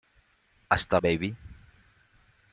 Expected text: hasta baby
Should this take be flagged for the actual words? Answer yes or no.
no